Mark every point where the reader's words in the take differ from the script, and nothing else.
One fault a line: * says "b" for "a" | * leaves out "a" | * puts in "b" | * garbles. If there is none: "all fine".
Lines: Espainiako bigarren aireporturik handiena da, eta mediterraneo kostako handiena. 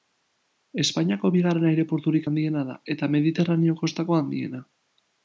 all fine